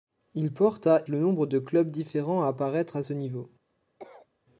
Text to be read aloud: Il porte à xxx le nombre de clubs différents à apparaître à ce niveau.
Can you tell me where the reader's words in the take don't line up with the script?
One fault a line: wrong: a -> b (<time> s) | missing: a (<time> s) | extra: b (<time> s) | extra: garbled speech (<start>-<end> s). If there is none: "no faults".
missing: xxx (1.1 s)